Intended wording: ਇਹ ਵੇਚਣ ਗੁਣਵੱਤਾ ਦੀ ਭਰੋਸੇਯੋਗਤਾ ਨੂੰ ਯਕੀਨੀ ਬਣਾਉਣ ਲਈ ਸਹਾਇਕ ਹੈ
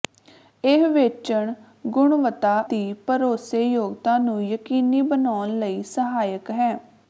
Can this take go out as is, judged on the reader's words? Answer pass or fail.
pass